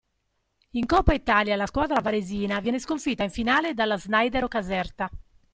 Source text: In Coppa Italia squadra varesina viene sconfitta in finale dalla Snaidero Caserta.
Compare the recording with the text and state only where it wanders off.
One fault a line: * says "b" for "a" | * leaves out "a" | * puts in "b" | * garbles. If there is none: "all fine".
* puts in "la"